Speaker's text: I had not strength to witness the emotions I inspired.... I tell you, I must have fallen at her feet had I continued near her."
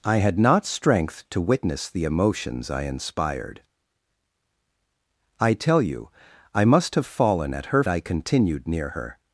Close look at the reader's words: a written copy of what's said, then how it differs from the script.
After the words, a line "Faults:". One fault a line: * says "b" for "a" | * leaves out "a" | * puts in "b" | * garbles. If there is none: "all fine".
I had not strength to witness the emotions I inspired.... I tell you, I must have fallen at her I continued near her."
Faults:
* leaves out "feet had"